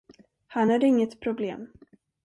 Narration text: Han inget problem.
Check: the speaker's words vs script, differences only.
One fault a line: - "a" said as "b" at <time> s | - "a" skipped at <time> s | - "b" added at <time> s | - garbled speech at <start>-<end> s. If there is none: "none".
- "är" added at 0.7 s